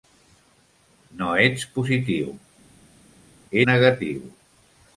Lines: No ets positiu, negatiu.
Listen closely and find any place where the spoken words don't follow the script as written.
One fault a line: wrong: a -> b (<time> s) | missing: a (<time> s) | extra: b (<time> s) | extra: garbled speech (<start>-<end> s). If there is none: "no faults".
no faults